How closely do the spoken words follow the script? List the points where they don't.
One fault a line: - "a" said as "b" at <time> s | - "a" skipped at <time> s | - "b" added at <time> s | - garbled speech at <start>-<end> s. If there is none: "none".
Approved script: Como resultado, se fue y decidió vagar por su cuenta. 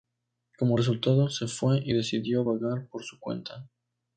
none